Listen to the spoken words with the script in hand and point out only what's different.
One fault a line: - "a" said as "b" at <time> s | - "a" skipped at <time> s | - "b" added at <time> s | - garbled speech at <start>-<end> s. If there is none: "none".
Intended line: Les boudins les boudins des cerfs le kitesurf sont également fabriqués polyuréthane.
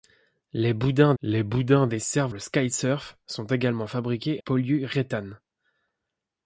none